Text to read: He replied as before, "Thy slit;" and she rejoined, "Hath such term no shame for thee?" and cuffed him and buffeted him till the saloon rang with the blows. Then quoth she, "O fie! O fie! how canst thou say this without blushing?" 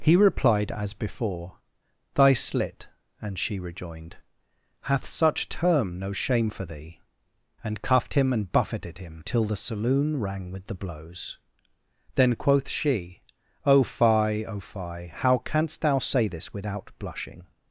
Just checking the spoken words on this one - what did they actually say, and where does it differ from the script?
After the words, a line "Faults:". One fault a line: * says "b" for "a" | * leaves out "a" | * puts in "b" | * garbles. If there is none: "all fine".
He replied as before, "Thy slit;" and she rejoined, "Hath such term no shame for thee?" and cuffed him and buffeted him till the saloon rang with the blows. Then quoth she, "O fie! O fie! how canst thou say this without blushing?"
Faults:
all fine